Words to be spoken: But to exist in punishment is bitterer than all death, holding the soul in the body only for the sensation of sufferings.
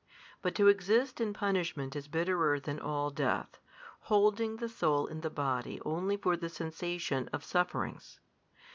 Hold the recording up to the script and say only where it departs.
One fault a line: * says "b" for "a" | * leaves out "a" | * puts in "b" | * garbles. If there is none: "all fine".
all fine